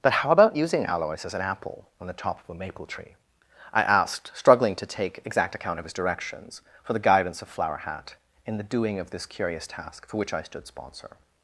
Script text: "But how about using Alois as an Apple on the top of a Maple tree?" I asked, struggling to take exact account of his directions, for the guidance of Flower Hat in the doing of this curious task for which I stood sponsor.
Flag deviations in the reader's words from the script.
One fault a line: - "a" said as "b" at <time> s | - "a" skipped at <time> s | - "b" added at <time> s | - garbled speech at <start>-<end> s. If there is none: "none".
none